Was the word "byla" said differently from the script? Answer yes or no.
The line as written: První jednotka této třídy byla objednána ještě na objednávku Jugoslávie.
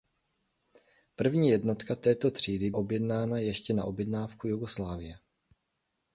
yes